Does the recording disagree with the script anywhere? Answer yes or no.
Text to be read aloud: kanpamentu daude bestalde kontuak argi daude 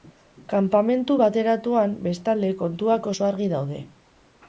yes